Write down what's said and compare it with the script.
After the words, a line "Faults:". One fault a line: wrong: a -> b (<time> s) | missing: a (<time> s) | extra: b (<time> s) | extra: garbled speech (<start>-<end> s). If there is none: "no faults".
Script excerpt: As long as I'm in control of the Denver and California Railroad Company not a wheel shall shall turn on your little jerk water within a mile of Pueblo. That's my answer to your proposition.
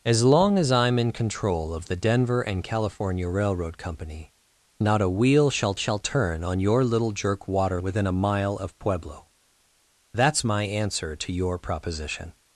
As long as I'm in control of the Denver and California Railroad Company not a wheel shall shall turn on your little jerk water within a mile of Pueblo. That's my answer to your proposition.
Faults:
no faults